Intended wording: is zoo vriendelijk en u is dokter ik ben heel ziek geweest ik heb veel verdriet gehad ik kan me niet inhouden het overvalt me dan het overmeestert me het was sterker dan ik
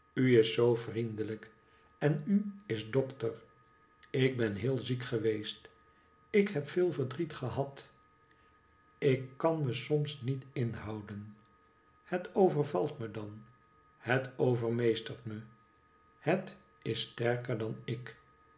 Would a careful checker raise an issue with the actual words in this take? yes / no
yes